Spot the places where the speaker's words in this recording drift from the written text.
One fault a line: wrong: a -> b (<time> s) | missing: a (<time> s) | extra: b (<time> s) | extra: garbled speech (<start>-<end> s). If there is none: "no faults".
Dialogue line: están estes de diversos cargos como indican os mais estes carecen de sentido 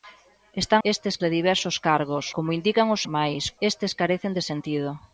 no faults